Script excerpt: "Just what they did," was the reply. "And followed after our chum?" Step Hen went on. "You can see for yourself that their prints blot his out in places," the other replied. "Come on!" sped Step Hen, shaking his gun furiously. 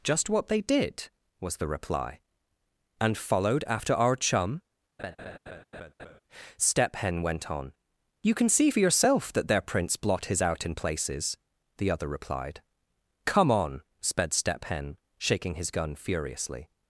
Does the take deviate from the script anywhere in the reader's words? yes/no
no